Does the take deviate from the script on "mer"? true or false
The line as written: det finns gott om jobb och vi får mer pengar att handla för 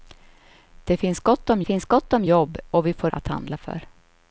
true